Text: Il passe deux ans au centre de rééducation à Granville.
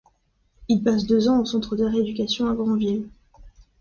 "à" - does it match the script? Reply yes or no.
yes